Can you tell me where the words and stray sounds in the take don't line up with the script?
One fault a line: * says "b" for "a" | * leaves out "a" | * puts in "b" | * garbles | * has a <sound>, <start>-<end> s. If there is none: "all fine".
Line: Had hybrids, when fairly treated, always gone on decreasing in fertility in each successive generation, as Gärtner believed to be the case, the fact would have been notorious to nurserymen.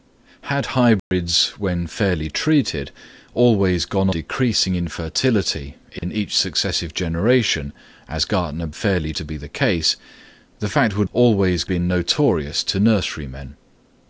* has a dropout, 1.0-1.1 s
* leaves out "on"
* has a dropout, 6.0-6.0 s
* says "fairly" for "believed"
* says "always" for "have"